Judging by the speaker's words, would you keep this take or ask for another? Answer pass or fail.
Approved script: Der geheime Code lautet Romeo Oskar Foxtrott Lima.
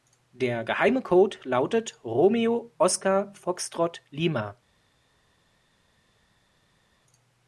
pass